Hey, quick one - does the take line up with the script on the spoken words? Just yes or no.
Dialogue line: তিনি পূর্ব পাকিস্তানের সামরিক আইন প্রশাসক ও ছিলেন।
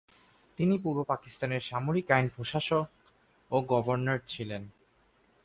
no